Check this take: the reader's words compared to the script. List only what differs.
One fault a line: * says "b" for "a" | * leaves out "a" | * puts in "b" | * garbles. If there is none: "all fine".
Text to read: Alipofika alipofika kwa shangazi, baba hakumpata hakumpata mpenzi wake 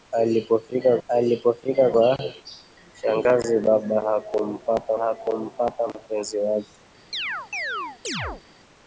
all fine